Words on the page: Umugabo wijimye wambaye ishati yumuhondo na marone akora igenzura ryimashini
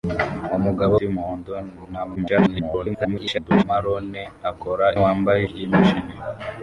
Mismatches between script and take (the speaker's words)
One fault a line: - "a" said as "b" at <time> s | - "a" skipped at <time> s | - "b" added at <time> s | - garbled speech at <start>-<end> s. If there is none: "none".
- "wijimye wambaye ishati" skipped at 0.9 s
- garbled speech at 2.2-3.6 s
- "igenzura" said as "wambaye" at 5.0 s